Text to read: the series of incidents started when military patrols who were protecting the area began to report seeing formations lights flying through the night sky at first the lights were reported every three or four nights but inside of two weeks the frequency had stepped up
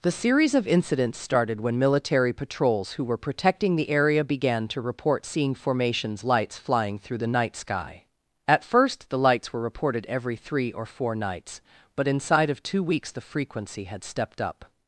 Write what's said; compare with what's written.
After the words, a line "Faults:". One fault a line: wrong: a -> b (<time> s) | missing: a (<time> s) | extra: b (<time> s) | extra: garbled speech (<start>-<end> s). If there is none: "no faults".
the series of incidents started when military patrols who were protecting the area began to report seeing formations lights flying through the night sky at first the lights were reported every three or four nights but inside of two weeks the frequency had stepped up
Faults:
no faults